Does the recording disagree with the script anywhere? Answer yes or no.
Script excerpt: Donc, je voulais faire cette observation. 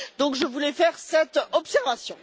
no